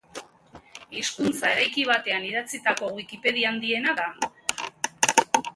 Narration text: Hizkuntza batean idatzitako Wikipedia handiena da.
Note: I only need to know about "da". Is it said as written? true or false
true